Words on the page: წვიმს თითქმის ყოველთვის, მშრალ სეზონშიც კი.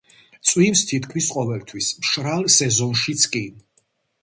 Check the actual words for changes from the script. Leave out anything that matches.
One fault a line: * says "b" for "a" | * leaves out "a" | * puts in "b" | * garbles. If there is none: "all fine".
all fine